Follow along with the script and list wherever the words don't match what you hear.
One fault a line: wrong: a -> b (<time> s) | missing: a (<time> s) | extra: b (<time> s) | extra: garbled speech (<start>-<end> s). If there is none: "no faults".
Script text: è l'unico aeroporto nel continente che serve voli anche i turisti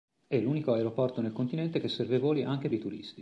no faults